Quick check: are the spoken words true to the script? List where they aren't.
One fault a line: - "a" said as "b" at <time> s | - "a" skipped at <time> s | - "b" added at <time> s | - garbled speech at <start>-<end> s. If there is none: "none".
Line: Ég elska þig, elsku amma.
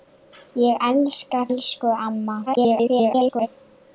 - "þig" skipped at 1.4 s
- garbled speech at 2.5-3.5 s